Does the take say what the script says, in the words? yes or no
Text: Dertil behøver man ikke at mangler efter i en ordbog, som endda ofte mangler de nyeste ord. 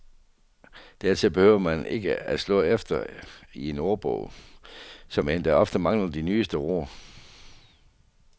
no